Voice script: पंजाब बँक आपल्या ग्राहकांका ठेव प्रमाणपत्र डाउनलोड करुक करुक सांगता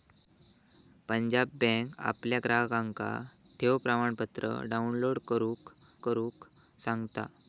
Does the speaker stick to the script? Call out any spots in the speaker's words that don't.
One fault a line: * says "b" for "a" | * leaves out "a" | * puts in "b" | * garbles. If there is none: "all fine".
all fine